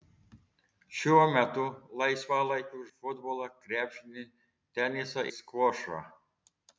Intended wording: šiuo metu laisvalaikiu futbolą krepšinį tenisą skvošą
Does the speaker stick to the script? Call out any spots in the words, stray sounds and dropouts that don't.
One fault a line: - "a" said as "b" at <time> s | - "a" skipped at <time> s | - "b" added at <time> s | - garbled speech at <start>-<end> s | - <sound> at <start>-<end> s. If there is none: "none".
none